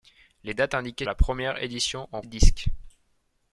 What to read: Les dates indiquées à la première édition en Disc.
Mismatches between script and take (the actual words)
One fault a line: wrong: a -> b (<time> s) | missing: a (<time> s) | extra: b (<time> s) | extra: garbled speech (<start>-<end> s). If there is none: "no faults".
no faults